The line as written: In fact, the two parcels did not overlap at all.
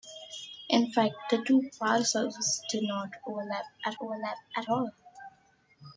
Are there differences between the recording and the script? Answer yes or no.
yes